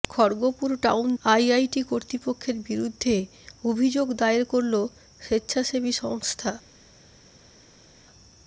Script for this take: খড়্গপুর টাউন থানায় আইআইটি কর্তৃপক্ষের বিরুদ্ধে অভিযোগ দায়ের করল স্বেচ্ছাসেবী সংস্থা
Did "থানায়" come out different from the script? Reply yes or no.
yes